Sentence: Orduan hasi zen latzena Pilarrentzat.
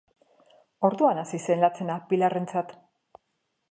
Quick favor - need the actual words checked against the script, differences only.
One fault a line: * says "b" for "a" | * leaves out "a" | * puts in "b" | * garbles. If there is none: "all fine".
all fine